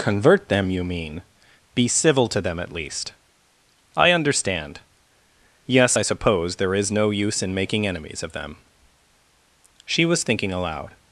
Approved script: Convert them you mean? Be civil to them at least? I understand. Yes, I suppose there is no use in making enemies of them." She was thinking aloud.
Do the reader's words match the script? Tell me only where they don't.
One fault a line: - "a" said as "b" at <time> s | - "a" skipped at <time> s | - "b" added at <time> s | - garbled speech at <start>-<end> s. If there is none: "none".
none